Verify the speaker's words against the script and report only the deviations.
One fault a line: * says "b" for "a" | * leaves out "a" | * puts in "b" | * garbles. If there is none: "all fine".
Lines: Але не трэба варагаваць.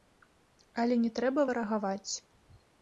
all fine